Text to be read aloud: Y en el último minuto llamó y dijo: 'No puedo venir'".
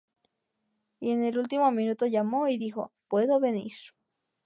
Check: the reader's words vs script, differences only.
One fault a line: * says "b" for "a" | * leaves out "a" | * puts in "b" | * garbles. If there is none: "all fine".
* leaves out "No"